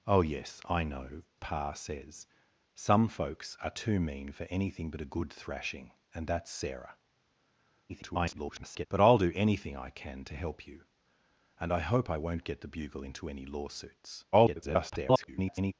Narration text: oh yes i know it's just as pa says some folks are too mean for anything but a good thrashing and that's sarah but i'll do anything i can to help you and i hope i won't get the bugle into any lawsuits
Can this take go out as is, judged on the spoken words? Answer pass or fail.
fail